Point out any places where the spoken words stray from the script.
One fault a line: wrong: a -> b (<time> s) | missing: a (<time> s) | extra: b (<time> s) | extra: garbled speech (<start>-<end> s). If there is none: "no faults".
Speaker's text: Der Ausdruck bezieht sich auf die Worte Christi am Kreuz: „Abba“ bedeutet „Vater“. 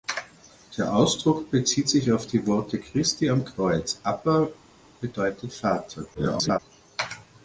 extra: garbled speech (6.1-6.6 s)